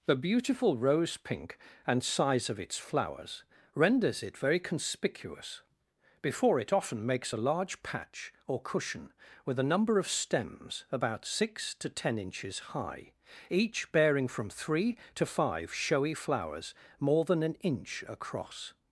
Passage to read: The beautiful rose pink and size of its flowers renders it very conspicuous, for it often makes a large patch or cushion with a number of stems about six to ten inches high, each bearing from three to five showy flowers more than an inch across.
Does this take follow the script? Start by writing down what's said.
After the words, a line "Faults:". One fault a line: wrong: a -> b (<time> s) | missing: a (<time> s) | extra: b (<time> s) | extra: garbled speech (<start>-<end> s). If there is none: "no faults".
The beautiful rose pink and size of its flowers renders it very conspicuous, before it often makes a large patch or cushion with a number of stems about six to ten inches high, each bearing from three to five showy flowers more than an inch across.
Faults:
wrong: for -> before (6.2 s)